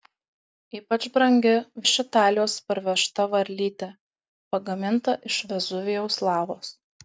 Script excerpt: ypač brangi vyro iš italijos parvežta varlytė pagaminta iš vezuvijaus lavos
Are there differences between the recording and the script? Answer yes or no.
yes